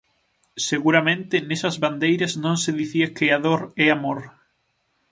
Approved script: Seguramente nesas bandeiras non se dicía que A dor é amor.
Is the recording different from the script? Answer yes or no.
no